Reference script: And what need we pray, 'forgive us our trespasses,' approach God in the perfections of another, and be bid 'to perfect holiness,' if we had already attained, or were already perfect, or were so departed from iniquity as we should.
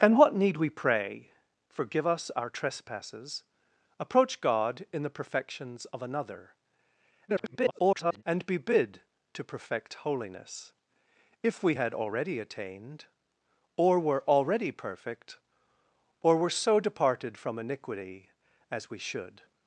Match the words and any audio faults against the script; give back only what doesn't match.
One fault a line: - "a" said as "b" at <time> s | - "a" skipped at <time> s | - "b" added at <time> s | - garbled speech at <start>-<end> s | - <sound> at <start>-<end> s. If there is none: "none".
- garbled speech at 7.3-8.2 s